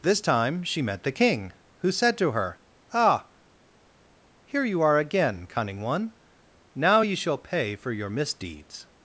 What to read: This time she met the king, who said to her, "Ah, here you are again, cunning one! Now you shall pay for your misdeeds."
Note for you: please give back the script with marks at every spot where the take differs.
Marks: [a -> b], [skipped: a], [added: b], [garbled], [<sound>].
This time she met the king, who said to her, "Ah, here you are again, cunning one! Now you shall pay for your misdeeds."